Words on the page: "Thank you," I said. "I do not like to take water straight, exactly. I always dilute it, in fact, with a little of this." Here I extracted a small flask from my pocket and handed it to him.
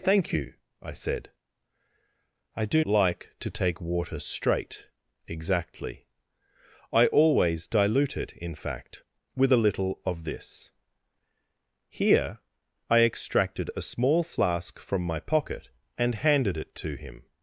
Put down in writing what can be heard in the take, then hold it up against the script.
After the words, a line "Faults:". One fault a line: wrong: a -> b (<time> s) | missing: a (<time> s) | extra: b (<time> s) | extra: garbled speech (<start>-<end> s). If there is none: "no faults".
"Thank you," I said. "I do like to take water straight, exactly. I always dilute it, in fact, with a little of this." Here I extracted a small flask from my pocket and handed it to him.
Faults:
missing: not (2.8 s)